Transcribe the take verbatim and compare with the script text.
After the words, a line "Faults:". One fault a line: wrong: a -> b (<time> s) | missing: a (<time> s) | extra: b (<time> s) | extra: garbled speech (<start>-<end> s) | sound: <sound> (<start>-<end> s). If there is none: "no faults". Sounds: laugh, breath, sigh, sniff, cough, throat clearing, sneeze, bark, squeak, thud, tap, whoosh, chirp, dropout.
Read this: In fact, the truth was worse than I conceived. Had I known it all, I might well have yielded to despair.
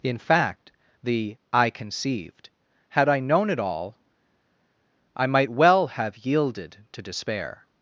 In fact, the I conceived. Had I known it all, I might well have yielded to despair.
Faults:
missing: truth was worse than (1.4 s)